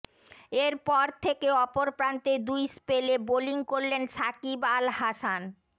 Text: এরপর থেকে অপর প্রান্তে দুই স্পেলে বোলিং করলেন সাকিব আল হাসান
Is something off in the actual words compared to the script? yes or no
no